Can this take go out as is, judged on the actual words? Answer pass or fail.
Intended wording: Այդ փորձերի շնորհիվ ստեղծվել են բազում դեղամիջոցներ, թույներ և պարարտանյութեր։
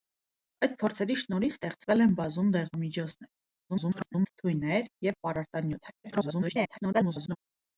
fail